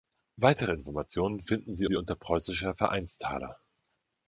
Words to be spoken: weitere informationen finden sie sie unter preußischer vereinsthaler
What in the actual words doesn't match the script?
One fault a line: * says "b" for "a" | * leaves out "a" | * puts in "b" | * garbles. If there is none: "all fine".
all fine